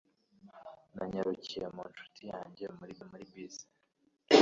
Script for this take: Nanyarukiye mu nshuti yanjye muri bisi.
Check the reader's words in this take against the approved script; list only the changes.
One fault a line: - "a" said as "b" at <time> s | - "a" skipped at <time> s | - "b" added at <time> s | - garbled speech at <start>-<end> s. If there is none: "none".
- "muri" added at 3.1 s